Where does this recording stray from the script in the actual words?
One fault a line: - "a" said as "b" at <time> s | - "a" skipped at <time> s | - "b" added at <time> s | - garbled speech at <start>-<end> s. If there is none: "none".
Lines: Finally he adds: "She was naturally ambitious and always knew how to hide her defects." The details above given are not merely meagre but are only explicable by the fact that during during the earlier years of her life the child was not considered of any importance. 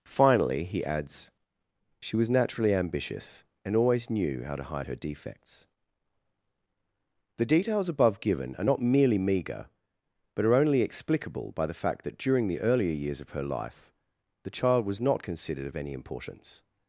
- "during" skipped at 12.5 s